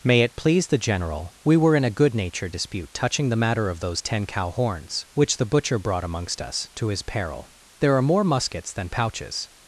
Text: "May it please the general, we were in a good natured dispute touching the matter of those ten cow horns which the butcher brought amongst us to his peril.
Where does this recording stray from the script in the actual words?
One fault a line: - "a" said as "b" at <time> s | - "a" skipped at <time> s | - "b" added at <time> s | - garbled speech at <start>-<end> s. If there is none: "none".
- "There are more muskets than pouches" added at 7.8 s